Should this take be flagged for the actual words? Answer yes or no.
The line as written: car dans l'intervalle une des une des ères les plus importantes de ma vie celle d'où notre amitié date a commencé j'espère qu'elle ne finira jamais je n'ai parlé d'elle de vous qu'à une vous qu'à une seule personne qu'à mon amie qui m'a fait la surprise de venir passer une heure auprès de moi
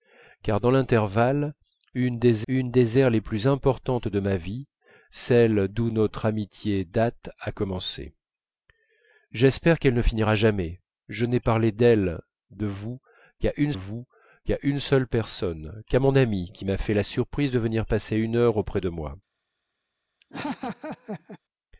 no